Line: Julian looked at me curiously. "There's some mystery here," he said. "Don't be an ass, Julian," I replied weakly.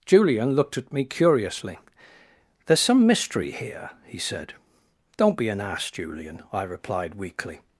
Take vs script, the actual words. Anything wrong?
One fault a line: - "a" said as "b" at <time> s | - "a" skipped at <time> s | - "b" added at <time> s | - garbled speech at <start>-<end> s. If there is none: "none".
none